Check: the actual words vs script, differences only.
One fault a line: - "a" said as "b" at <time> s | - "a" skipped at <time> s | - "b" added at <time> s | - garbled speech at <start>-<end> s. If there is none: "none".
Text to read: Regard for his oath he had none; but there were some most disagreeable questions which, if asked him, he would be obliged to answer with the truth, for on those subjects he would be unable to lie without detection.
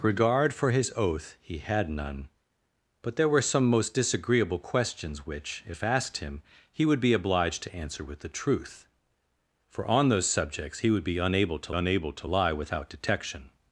- "unable to" added at 11.7 s